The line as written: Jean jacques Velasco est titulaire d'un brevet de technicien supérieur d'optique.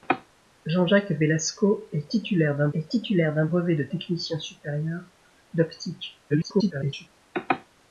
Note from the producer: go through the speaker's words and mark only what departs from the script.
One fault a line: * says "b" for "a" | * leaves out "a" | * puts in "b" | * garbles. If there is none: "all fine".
* puts in "est titulaire d'un"
* garbles